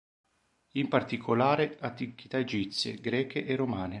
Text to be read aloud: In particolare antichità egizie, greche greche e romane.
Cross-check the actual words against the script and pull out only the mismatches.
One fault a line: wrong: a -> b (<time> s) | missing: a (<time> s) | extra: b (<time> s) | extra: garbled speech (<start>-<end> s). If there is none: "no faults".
missing: greche (3.5 s)